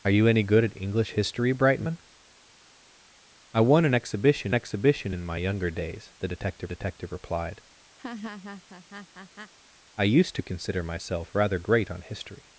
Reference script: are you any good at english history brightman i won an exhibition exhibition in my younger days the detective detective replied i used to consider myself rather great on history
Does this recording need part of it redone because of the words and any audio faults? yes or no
yes